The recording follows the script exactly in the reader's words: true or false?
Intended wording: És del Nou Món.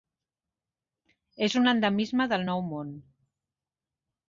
false